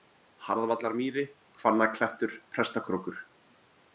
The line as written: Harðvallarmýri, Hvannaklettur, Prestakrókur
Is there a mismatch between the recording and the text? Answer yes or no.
no